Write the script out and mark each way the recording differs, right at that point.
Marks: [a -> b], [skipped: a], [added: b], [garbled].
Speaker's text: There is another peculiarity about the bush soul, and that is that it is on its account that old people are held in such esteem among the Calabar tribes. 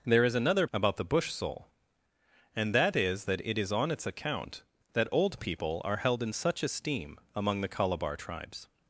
There is another [skipped: peculiarity] about the bush soul, and that is that it is on its account that old people are held in such esteem among the Calabar tribes.